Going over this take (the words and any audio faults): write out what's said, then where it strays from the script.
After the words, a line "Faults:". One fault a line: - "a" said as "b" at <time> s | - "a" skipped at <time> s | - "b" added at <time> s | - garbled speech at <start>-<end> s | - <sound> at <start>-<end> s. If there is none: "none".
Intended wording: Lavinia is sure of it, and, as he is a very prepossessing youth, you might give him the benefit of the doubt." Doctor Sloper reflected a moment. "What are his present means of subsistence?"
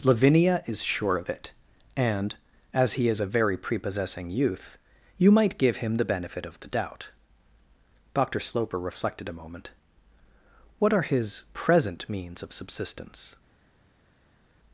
Lavinia is sure of it, and, as he is a very prepossessing youth, you might give him the benefit of the doubt." Doctor Sloper reflected a moment. "What are his present means of subsistence?"
Faults:
none